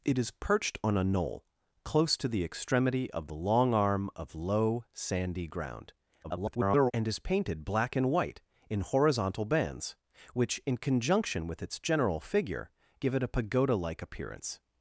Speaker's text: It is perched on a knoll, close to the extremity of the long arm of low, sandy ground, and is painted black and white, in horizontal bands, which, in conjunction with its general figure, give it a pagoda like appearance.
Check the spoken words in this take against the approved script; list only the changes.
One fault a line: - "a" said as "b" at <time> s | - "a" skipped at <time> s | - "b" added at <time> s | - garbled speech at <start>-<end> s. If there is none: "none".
- garbled speech at 6.2-6.9 s